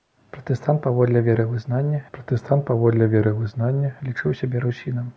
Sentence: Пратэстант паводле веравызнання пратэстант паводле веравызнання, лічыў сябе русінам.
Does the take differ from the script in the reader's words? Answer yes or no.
no